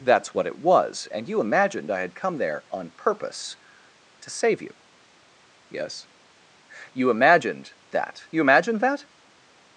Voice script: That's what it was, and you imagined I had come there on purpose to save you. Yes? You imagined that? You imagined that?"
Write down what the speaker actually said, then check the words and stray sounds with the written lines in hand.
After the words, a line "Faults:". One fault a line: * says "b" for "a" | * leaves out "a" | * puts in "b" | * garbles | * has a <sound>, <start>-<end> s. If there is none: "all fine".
That's what it was, and you imagined I had come there on purpose to save you. Yes? You imagined that? You imagined that?"
Faults:
all fine